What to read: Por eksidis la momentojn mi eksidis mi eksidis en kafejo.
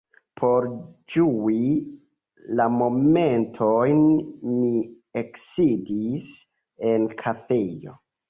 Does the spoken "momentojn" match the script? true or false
true